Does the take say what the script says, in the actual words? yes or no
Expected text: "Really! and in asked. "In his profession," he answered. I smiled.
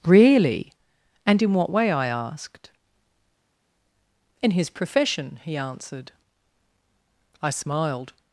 no